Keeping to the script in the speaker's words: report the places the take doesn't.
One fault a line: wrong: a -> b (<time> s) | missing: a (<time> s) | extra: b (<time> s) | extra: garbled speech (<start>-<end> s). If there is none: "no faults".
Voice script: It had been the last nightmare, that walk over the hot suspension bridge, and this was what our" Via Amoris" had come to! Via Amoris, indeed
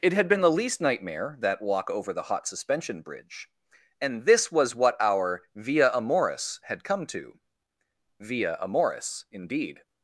wrong: last -> least (0.5 s)